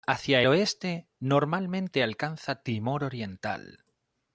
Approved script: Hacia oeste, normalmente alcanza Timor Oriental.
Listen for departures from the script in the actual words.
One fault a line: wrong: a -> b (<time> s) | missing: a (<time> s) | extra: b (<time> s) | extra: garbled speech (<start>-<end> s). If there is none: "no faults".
no faults